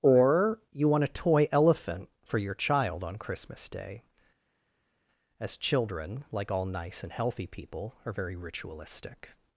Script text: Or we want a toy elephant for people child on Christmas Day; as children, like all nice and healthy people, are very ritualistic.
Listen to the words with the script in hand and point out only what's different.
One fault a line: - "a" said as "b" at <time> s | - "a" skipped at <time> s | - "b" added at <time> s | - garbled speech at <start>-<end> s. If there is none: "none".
- "we" said as "you" at 0.7 s
- "people" said as "your" at 2.4 s